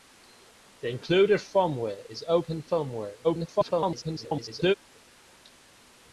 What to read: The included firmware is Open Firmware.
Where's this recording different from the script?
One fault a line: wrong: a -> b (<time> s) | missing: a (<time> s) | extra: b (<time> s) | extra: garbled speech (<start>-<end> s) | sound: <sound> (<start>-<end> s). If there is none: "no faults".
extra: garbled speech (3.2-4.7 s)